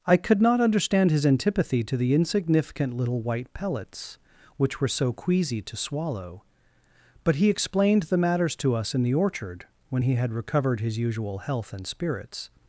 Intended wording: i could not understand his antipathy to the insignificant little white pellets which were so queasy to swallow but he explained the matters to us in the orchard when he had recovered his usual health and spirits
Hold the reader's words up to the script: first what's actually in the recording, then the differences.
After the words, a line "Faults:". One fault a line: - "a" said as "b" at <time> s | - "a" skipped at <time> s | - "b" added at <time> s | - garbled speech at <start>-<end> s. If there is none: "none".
i could not understand his antipathy to the insignificant little white pellets which were so queasy to swallow but he explained the matters to us in the orchard when he had recovered his usual health and spirits
Faults:
none